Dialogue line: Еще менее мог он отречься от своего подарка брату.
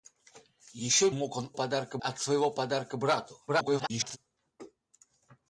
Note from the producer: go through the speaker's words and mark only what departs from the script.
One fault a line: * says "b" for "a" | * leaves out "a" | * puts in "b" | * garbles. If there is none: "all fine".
* leaves out "менее"
* says "подарка" for "отречься"
* garbles